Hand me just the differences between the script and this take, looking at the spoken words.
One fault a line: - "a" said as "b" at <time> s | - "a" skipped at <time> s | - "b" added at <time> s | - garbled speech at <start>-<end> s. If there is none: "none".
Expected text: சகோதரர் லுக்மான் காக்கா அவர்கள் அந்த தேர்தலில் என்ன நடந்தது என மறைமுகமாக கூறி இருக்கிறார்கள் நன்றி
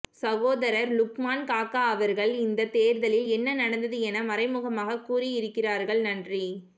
- "அந்த" said as "இந்த" at 2.4 s